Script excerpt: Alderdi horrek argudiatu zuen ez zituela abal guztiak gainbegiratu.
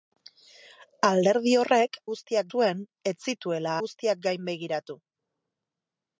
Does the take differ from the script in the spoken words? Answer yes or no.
yes